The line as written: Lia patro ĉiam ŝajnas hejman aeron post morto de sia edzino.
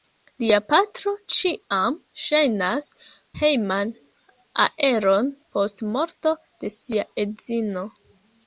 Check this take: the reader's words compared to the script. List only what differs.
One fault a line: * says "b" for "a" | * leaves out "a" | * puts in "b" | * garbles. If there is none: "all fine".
all fine